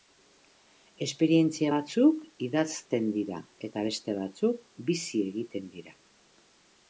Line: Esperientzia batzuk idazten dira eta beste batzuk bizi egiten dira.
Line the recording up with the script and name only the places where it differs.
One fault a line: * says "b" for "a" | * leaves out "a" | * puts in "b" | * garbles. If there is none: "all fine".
all fine